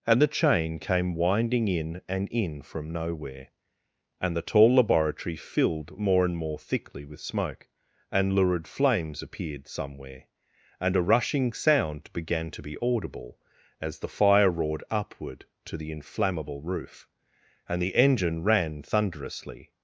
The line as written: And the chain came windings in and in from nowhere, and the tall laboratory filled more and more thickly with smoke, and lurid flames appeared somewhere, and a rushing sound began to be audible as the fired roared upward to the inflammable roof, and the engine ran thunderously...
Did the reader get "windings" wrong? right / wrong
wrong